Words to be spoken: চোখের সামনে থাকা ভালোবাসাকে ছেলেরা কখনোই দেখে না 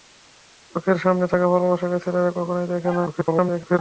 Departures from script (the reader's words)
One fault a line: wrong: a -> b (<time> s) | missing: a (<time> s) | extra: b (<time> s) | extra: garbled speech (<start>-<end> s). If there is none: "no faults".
extra: garbled speech (3.1-3.8 s)